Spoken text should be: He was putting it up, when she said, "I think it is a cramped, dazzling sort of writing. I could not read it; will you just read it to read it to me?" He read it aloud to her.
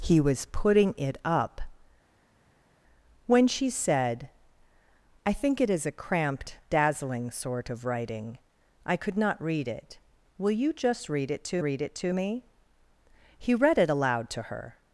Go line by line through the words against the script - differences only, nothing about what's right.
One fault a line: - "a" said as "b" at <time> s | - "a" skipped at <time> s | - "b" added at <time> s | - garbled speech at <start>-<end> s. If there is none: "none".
none